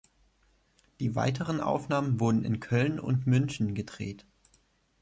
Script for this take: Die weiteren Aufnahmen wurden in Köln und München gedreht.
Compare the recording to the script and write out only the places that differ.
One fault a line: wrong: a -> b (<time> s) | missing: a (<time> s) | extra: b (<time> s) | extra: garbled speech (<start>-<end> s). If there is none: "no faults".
no faults